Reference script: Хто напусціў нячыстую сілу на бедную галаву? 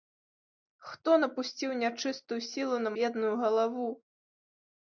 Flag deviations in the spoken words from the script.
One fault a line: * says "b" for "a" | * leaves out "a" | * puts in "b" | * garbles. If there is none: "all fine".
all fine